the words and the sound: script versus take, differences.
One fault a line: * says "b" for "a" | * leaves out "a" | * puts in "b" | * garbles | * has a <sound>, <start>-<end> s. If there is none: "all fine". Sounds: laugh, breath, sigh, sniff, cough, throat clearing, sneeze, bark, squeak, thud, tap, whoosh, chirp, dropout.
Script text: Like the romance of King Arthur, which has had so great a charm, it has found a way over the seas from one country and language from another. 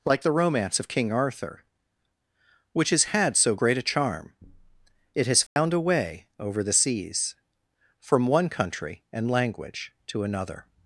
* has a dropout, 5.5-5.6 s
* says "to" for "from"